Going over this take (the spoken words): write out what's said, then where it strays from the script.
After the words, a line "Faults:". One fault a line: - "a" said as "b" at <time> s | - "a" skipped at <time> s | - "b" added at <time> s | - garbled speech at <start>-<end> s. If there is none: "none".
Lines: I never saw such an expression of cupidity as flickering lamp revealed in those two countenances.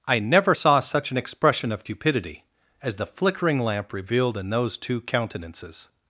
I never saw such an expression of cupidity as the flickering lamp revealed in those two countenances.
Faults:
- "the" added at 3.0 s